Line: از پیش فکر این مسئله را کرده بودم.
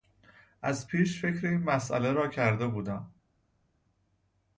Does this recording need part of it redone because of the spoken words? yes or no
no